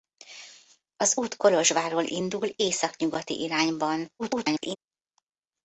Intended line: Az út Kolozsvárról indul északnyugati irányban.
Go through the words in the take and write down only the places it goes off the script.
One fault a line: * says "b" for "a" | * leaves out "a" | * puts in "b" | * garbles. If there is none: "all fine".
* garbles